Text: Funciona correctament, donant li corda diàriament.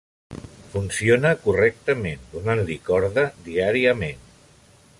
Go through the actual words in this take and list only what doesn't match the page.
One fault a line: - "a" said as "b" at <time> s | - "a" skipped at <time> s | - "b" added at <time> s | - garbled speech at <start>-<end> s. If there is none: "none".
none